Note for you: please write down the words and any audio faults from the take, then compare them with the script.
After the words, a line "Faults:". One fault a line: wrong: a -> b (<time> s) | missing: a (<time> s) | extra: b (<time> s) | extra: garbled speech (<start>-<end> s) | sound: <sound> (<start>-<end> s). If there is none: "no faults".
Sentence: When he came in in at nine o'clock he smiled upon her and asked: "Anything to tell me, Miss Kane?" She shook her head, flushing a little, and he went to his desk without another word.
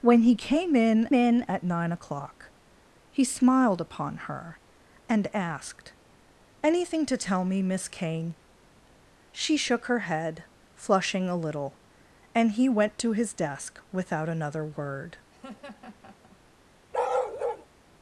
When he came in in at nine o'clock he smiled upon her and asked: "Anything to tell me, Miss Kane?" She shook her head, flushing a little, and he went to his desk without another word.
Faults:
sound: laugh (15.3-16.4 s)
sound: bark (16.9-17.7 s)